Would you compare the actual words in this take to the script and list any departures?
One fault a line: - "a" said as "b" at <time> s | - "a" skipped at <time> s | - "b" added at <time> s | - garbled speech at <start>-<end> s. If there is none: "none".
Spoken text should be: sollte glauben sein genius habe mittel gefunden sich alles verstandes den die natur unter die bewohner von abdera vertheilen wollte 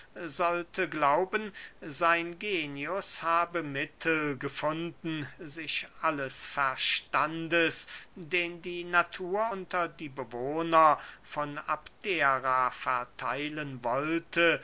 none